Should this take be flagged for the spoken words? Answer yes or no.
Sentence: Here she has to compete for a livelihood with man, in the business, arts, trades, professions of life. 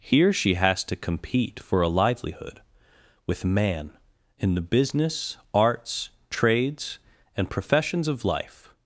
yes